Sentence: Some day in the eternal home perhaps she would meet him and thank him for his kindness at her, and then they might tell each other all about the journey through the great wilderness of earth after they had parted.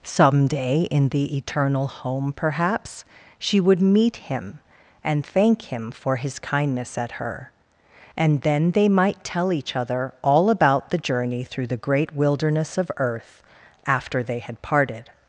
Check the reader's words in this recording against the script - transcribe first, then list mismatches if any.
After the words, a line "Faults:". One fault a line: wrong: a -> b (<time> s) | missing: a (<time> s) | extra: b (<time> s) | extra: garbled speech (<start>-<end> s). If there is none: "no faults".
Some day in the eternal home perhaps she would meet him and thank him for his kindness at her, and then they might tell each other all about the journey through the great wilderness of earth after they had parted.
Faults:
no faults